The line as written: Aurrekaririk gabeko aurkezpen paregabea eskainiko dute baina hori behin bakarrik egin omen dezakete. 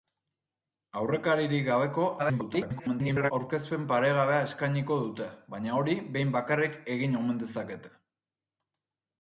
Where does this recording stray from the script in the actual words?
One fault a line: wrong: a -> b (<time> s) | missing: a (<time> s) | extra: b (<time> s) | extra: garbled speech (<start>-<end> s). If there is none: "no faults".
extra: garbled speech (2.2-3.3 s)